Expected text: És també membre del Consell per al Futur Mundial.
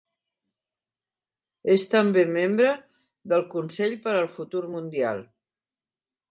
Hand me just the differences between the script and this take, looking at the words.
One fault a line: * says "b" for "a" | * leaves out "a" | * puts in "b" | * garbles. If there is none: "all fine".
all fine